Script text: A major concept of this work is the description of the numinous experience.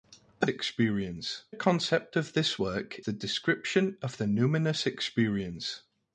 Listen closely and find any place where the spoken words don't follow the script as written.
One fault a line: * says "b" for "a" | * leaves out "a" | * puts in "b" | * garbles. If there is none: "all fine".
* says "experience" for "major"
* leaves out "is"